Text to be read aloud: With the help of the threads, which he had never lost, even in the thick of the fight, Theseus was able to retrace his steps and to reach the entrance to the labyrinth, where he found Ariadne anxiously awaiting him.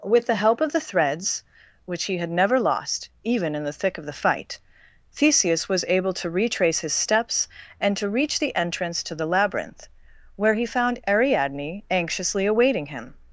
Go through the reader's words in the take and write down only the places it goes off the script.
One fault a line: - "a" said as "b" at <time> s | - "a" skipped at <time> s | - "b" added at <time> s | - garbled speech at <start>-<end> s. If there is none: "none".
none